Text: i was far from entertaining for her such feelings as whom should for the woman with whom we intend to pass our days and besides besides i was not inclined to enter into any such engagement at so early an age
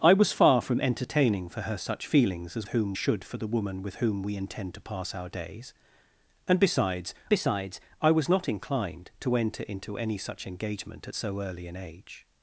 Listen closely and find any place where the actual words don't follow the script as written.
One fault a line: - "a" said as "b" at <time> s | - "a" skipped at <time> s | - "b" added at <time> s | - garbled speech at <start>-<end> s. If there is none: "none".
none